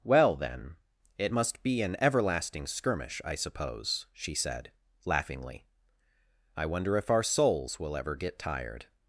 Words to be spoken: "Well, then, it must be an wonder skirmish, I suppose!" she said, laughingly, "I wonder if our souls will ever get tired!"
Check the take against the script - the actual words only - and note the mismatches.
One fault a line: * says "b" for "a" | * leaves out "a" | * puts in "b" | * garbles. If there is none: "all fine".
* says "everlasting" for "wonder"